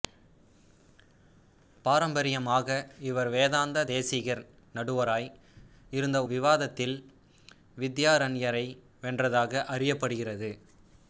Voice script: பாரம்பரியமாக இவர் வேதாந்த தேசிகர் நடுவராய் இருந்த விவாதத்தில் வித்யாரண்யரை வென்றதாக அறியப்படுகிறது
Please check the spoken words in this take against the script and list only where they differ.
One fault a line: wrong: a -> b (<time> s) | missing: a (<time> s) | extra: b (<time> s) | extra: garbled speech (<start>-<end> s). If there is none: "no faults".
no faults